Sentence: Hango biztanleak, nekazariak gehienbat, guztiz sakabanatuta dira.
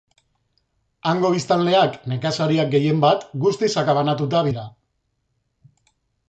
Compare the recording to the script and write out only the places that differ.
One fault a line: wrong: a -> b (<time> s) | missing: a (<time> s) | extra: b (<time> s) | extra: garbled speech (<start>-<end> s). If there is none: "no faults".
no faults